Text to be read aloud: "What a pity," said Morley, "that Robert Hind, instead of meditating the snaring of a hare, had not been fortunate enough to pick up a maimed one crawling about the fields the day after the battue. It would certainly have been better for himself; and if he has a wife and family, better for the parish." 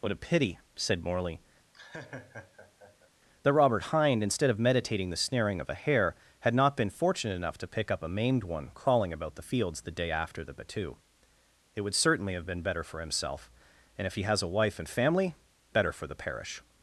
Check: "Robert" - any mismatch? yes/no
no